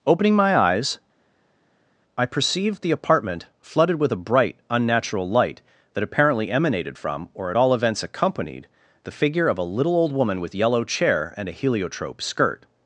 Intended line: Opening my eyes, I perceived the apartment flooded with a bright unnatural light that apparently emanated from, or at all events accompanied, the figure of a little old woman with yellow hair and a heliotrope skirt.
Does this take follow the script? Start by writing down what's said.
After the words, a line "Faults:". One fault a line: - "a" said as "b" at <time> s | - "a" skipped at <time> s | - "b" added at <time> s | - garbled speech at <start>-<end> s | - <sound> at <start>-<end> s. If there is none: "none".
Opening my eyes, I perceived the apartment flooded with a bright unnatural light that apparently emanated from, or at all events accompanied, the figure of a little old woman with yellow chair and a heliotrope skirt.
Faults:
- "hair" said as "chair" at 10.8 s